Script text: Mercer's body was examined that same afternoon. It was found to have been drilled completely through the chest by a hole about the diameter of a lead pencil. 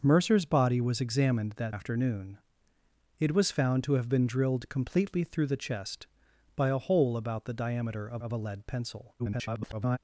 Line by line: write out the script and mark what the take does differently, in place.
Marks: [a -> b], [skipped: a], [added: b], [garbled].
Mercer's body was examined that [skipped: same] afternoon. It was found to have been drilled completely through the chest by a hole about the diameter of [added: of] a lead pencil. [garbled]